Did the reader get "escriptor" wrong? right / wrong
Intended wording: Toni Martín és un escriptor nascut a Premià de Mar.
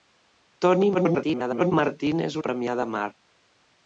wrong